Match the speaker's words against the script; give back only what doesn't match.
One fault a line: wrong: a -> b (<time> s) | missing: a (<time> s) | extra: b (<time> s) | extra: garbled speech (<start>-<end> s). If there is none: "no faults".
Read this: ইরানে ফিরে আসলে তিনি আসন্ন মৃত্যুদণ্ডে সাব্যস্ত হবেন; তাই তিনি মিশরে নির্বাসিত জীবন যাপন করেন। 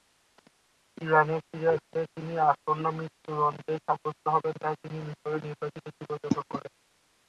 no faults